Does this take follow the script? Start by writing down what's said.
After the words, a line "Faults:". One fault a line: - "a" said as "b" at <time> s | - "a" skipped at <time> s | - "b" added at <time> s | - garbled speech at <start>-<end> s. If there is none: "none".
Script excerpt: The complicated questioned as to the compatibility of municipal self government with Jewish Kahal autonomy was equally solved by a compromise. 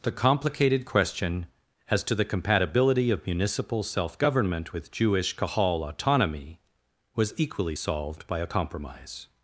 The complicated question as to the compatibility of municipal self government with Jewish Kahal autonomy was equally solved by a compromise.
Faults:
- "questioned" said as "question" at 0.8 s